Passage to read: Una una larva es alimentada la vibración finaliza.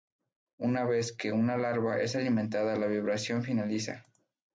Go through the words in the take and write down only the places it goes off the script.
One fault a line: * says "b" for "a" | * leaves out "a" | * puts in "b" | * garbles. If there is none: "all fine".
* puts in "vez que"